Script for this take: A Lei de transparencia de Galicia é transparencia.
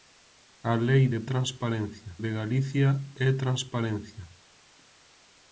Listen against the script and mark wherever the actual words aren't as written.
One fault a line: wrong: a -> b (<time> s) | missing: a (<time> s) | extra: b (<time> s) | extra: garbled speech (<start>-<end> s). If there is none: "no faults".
no faults